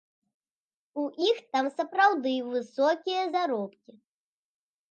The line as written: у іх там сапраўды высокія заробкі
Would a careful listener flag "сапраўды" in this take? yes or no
no